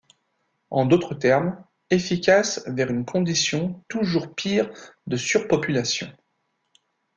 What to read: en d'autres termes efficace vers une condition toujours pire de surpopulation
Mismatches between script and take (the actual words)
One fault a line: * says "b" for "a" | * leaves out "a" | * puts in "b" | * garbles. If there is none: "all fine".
all fine